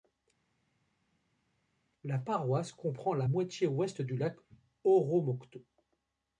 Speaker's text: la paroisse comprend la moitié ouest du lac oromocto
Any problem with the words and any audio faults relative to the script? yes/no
no